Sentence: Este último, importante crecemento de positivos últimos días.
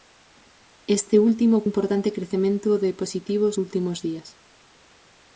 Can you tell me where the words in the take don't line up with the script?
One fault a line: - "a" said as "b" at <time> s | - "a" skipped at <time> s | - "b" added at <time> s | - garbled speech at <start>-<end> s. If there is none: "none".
none